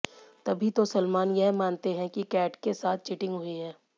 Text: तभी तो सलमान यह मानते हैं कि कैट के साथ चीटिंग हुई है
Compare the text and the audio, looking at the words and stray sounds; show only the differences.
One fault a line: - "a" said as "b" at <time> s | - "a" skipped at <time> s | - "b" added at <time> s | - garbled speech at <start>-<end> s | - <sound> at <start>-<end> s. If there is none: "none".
none